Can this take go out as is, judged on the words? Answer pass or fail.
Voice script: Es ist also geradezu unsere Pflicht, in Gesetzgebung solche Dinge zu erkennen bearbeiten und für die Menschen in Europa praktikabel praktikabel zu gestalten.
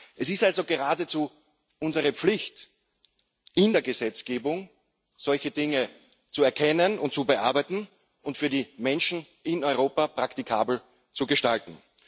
fail